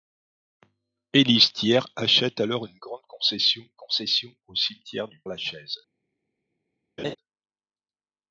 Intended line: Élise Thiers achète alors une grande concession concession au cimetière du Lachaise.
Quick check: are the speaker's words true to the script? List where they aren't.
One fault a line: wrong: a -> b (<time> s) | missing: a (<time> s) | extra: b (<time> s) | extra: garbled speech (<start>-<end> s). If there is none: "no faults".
no faults